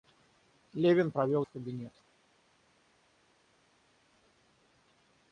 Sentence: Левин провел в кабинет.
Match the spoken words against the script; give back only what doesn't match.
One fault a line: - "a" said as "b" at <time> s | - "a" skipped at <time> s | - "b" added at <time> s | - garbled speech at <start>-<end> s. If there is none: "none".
none